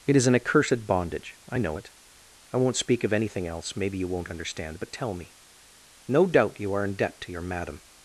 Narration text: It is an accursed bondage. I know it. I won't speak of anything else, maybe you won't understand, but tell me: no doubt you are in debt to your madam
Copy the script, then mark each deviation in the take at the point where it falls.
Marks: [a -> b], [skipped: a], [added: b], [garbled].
It is an accursed bondage. I know it. I won't speak of anything else, maybe you won't understand, but tell me: no doubt you are in debt to your madam